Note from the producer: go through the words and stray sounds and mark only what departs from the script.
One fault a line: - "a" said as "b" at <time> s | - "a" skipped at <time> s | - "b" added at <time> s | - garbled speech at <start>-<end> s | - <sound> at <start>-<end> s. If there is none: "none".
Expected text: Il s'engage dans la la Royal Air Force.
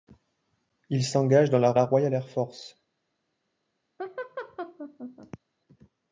- laugh at 4.0-5.4 s